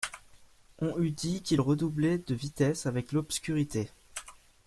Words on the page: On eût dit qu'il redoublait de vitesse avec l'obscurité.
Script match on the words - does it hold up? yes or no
yes